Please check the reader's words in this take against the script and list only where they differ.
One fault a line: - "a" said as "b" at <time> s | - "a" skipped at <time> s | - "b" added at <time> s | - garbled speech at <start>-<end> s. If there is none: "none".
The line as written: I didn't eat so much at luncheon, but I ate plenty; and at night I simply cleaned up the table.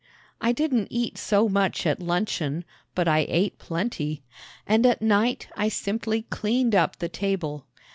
none